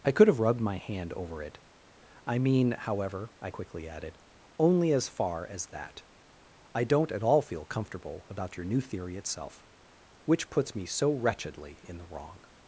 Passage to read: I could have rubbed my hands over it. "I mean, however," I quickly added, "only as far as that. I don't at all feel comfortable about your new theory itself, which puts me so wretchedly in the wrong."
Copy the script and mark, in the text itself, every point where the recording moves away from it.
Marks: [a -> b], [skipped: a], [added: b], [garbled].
I could have rubbed my [hands -> hand] over it. "I mean, however," I quickly added, "only as far as that. I don't at all feel comfortable about your new theory itself, which puts me so wretchedly in the wrong."